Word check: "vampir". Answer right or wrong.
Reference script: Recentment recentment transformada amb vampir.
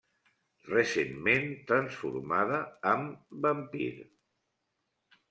right